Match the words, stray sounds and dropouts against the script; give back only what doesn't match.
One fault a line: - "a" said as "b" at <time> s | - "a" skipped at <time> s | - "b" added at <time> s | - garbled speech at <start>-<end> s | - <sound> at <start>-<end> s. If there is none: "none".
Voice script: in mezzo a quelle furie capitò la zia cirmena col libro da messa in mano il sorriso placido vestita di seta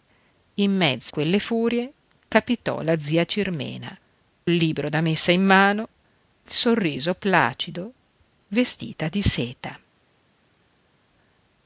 - "a" skipped at 1.1 s
- "col" skipped at 3.9 s